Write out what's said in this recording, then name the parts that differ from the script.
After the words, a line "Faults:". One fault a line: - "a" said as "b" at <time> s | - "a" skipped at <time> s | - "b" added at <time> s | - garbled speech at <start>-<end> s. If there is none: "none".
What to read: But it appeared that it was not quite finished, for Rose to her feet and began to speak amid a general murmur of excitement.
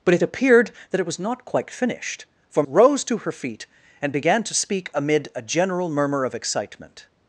But it appeared that it was not quite finished, for Rose to her feet and began to speak amid a general murmur of excitement.
Faults:
none